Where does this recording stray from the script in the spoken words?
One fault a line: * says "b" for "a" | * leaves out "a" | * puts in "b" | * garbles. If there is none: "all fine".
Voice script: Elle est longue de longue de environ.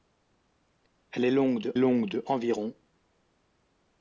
all fine